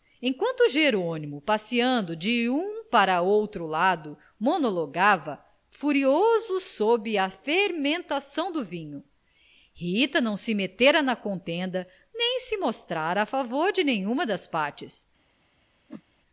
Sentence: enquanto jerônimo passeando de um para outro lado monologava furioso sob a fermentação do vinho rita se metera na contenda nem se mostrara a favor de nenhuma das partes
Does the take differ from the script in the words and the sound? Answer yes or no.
yes